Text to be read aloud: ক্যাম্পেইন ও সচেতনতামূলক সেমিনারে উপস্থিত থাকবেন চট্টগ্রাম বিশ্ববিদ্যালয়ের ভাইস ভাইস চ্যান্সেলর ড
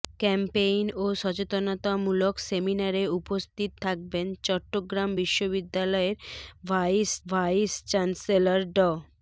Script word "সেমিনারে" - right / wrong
right